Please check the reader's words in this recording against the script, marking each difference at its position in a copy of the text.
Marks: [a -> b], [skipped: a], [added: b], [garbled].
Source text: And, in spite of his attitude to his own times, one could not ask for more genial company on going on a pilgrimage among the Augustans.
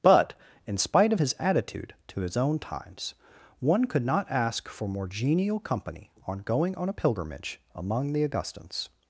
[And, -> But] in spite of his attitude to his own times, one could not ask for more genial company on going on a pilgrimage among the Augustans.